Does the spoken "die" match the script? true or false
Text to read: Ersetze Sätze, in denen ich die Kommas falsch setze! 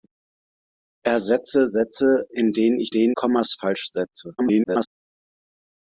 false